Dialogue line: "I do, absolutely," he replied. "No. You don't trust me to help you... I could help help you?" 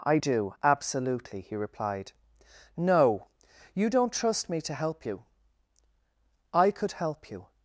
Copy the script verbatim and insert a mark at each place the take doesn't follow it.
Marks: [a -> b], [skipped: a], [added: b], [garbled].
"I do, absolutely," he replied. "No. You don't trust me to help you... I could help [skipped: help] you?"